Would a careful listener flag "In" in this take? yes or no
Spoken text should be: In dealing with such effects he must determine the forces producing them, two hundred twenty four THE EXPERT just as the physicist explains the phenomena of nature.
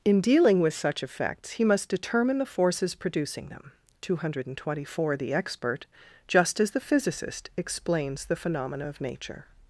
no